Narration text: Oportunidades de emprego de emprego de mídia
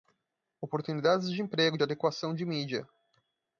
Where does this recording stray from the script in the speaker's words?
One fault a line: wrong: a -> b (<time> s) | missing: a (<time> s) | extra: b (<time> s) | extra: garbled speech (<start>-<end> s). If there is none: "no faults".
wrong: emprego -> adequação (1.8 s)